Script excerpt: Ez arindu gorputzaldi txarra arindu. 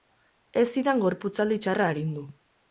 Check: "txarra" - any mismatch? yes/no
no